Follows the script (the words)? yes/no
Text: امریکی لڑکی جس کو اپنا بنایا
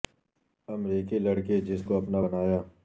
yes